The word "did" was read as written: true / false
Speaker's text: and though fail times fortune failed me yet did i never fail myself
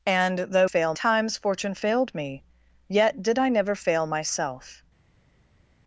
true